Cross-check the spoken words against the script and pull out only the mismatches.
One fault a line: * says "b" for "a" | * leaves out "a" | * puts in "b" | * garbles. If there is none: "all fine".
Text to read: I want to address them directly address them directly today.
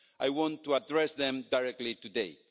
* leaves out "address them directly"